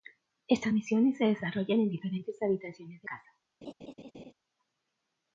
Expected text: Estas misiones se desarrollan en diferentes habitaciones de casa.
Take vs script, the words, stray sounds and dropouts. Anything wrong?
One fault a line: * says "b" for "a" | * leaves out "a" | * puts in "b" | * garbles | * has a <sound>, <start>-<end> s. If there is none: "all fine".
* has a laugh, 3.6-4.3 s